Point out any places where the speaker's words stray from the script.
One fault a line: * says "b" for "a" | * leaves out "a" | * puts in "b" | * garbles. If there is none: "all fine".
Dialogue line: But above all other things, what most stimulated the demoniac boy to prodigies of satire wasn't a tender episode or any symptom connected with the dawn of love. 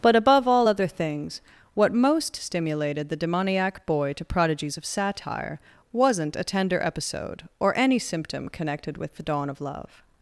all fine